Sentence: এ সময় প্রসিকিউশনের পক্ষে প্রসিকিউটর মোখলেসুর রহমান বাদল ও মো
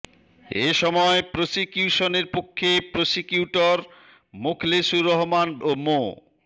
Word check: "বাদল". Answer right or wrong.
wrong